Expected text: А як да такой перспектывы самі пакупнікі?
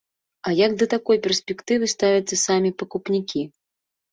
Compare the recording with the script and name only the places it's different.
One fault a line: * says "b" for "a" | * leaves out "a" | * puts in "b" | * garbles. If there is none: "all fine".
* puts in "ставяцца"